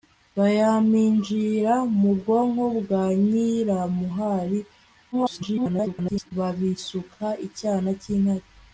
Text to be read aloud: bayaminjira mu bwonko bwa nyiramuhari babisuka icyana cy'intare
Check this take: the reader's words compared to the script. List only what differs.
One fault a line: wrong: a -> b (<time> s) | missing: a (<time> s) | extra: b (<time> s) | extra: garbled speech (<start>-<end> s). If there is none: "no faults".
extra: garbled speech (5.1-6.3 s)